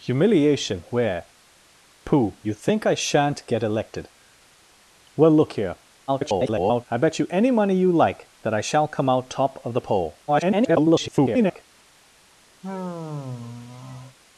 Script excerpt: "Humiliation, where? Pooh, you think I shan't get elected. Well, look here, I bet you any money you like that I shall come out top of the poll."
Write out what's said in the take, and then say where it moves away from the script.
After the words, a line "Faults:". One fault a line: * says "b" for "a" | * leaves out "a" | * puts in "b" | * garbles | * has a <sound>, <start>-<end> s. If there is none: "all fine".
"Humiliation, where? Pooh, you think I shan't get elected. Well, look here, [garbled] I bet you any money you like that I shall come out top of the poll." [garbled]
Faults:
* garbles
* garbles
* has a sigh, 12.6-14.2 s